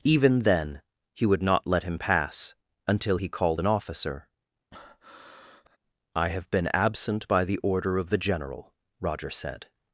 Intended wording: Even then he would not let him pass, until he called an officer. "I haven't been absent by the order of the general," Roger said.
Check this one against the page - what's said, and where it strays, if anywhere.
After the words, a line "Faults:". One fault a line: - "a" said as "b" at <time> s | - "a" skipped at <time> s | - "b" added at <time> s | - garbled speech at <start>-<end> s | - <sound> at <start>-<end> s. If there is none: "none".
Even then he would not let him pass, until he called an officer. "I have been absent by the order of the general," Roger said.
Faults:
- breath at 4.7-5.8 s
- "haven't" said as "have" at 6.3 s